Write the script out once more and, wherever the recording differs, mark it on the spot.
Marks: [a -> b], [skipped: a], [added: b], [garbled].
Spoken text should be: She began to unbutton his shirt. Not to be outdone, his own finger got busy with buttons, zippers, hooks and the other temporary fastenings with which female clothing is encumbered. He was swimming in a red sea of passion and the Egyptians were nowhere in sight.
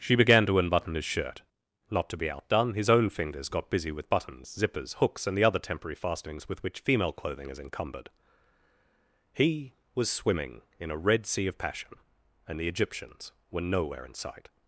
She began to unbutton his shirt. Not to be outdone, his own [finger -> fingers] got busy with buttons, zippers, hooks and the other temporary fastenings with which female clothing is encumbered. He was swimming in a red sea of passion and the Egyptians were nowhere in sight.